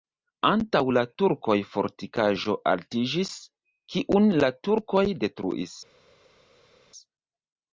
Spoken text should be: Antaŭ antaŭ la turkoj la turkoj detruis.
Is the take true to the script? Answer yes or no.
no